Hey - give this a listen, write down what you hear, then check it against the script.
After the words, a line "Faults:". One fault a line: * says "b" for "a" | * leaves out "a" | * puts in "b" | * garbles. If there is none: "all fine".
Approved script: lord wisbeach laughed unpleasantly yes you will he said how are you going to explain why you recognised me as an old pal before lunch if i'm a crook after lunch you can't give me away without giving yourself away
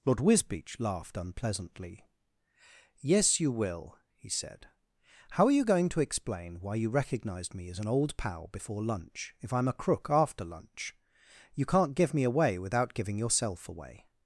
lord wisbeach laughed unpleasantly yes you will he said how are you going to explain why you recognised me as an old pal before lunch if i'm a crook after lunch you can't give me away without giving yourself away
Faults:
all fine